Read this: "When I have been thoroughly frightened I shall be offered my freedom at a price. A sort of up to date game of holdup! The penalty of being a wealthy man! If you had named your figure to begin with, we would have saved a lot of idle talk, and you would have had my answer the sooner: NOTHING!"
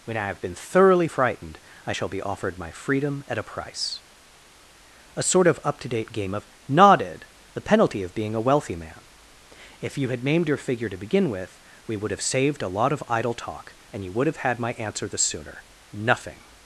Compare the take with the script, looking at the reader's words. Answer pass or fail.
fail